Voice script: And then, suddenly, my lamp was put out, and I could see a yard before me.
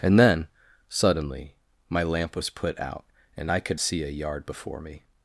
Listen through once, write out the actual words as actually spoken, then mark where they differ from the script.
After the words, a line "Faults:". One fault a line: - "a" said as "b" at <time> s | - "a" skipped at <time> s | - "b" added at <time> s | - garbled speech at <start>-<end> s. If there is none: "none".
And then, suddenly, my lamp was put out, and I could see a yard before me.
Faults:
none